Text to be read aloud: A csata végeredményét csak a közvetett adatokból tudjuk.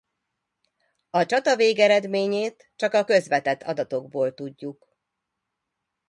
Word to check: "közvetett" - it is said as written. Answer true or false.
true